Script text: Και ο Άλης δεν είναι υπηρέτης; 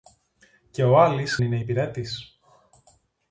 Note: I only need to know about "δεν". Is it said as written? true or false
false